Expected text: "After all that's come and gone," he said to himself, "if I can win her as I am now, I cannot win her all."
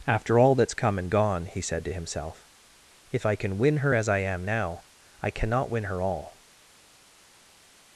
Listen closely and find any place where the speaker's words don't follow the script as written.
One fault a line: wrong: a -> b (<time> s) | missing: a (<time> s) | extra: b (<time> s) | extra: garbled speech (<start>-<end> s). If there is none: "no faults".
no faults